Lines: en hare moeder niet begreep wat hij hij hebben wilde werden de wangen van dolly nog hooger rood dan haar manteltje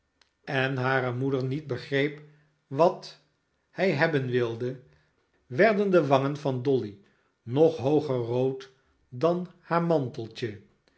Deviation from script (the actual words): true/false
true